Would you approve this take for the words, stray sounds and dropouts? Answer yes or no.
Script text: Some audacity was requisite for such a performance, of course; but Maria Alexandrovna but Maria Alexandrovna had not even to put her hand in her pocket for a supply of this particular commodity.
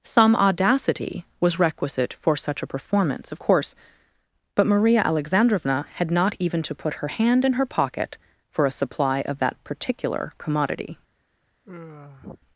no